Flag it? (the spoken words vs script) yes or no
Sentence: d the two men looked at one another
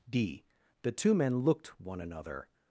yes